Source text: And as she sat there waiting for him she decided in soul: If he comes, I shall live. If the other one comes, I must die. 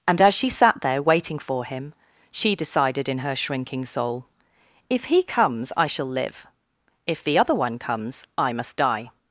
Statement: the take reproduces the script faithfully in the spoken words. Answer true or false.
false